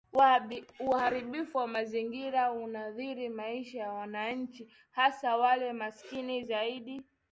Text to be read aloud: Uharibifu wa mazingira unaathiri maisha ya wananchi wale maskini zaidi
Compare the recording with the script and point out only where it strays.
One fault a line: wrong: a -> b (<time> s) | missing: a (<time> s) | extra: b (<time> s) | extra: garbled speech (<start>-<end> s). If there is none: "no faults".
extra: hasa (4.9 s)